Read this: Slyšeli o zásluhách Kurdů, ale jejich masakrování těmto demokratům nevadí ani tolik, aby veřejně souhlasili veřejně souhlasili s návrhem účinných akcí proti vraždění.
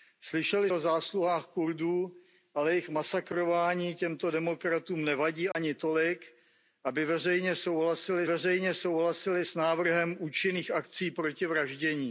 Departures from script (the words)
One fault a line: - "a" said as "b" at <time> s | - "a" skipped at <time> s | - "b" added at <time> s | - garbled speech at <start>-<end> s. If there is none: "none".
none